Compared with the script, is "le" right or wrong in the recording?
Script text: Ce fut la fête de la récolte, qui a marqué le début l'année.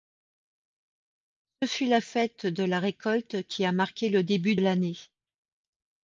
right